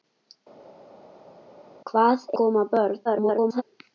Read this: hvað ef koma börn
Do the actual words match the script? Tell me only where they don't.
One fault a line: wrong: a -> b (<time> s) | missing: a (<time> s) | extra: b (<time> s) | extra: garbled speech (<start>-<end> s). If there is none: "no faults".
missing: ef (2.2 s)
extra: garbled speech (3.0-3.6 s)